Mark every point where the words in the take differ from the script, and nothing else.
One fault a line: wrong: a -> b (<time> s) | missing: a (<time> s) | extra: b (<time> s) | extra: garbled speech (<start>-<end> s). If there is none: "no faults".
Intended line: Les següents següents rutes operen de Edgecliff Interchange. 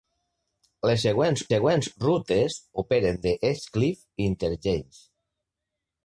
no faults